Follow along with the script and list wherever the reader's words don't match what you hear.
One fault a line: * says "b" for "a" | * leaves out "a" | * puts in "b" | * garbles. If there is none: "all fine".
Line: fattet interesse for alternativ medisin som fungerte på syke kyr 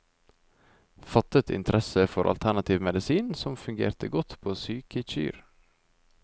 * puts in "godt"